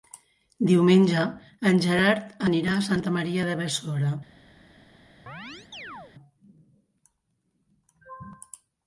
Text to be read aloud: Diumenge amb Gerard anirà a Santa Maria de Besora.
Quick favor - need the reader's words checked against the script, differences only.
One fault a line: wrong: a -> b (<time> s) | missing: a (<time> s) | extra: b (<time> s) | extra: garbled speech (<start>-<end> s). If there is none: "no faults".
wrong: amb -> en (1.7 s)